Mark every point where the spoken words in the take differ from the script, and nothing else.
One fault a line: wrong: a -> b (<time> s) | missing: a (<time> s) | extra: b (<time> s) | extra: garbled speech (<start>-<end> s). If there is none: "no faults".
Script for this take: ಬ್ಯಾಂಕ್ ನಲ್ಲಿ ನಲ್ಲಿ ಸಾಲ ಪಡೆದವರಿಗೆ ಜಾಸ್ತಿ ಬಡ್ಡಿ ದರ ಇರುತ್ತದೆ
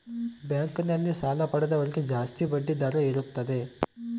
missing: ನಲ್ಲಿ (1.1 s)